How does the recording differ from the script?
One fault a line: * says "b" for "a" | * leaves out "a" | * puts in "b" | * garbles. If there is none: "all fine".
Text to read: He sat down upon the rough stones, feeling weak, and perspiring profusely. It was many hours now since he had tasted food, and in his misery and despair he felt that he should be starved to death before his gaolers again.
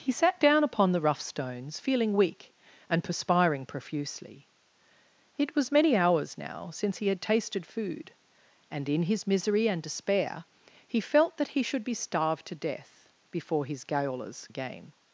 all fine